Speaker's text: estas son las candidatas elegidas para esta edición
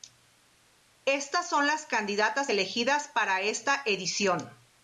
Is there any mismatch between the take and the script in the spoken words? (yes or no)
no